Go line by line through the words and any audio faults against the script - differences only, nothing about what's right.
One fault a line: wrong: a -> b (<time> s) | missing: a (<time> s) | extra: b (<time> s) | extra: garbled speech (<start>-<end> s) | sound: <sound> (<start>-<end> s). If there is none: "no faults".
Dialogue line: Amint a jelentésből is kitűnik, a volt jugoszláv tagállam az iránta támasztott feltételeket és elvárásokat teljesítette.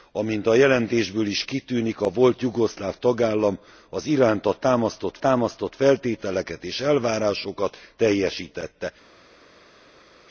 extra: támasztott (5.2 s)